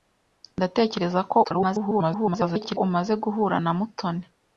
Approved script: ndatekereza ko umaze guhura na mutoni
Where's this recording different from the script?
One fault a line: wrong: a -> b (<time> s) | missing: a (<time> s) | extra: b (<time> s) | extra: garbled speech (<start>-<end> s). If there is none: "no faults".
extra: garbled speech (1.4-2.8 s)